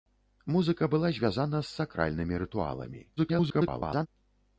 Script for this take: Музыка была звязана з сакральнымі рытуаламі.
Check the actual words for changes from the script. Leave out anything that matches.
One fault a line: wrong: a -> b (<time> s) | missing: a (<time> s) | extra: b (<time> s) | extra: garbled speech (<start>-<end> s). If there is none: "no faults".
extra: garbled speech (3.2-4.1 s)